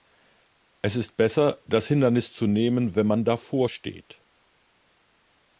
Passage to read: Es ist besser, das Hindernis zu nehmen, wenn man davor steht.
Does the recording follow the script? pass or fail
pass